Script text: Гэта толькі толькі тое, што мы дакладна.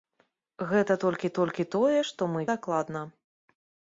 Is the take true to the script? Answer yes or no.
yes